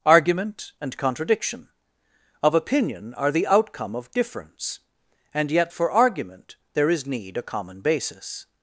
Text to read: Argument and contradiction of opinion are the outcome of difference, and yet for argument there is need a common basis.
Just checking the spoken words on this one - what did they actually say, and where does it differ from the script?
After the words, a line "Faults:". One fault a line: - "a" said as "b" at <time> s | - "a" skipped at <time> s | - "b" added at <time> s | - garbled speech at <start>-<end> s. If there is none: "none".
Argument and contradiction of opinion are the outcome of difference, and yet for argument there is need a common basis.
Faults:
none